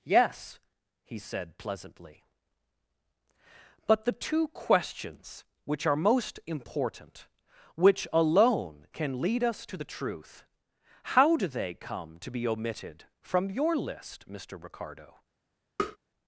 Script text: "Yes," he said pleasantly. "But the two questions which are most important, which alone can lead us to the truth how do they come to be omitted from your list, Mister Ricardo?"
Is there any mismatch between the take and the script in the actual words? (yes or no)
no